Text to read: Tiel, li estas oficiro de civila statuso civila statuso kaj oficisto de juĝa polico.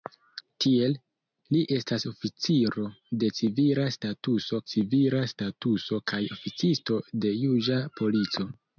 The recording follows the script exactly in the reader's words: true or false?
true